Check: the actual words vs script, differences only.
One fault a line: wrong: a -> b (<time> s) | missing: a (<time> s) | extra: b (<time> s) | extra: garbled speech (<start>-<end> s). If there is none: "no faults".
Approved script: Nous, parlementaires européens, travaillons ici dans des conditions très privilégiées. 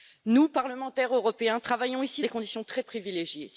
missing: dans (2.2 s)